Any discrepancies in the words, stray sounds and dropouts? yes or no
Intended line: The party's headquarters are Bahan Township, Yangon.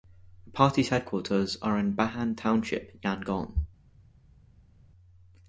yes